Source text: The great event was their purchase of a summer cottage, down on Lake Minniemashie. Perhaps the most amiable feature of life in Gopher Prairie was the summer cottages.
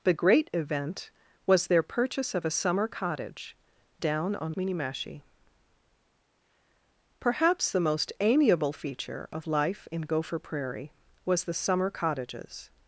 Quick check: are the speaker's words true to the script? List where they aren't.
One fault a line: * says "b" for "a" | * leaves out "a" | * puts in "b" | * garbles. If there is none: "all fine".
* leaves out "Lake"